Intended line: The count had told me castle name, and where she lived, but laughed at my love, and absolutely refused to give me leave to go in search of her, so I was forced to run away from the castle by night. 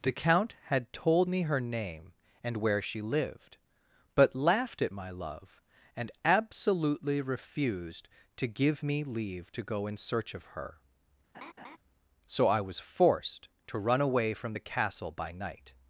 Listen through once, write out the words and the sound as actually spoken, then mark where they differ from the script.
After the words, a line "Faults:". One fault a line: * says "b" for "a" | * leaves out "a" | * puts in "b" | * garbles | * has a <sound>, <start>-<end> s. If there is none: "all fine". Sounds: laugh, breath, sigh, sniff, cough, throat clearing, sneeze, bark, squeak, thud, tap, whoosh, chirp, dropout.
The count had told me her name, and where she lived, but laughed at my love, and absolutely refused to give me leave to go in search of her, so I was forced to run away from the castle by night.
Faults:
* says "her" for "castle"
* has a laugh, 11.3-11.8 s